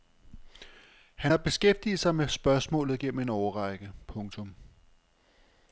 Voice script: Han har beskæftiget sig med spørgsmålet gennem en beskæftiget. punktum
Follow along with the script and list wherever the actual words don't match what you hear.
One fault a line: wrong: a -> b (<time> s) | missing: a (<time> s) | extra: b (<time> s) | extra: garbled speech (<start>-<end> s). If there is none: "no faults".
wrong: beskæftiget -> årrække (3.3 s)